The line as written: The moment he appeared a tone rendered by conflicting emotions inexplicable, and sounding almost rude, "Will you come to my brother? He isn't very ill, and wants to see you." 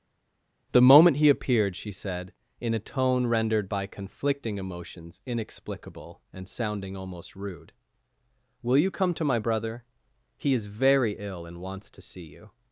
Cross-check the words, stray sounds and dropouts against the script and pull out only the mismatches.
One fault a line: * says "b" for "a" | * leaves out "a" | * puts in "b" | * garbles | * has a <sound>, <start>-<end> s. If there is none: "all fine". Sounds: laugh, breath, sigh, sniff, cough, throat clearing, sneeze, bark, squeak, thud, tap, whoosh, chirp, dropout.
* puts in "she said in"
* says "is" for "isn't"